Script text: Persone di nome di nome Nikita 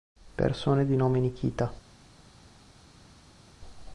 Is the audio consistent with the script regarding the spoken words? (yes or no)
no